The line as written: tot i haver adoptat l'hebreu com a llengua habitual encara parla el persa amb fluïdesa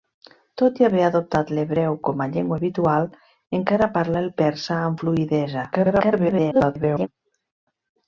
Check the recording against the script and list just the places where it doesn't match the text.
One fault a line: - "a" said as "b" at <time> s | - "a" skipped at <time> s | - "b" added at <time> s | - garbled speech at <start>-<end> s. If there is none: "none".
- garbled speech at 5.7-7.1 s